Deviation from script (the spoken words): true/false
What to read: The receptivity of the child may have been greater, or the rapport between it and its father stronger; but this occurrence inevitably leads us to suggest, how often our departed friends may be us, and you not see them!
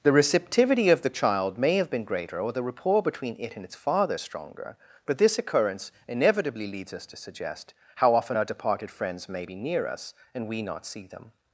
true